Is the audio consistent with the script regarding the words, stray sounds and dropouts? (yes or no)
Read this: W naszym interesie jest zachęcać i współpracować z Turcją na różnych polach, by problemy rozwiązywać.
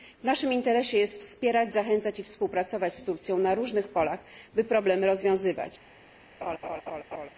no